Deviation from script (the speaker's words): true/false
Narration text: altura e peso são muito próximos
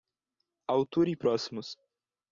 true